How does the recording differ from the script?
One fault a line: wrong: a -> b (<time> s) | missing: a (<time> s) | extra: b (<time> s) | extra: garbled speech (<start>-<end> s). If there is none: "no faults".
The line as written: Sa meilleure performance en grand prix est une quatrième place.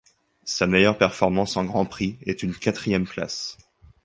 no faults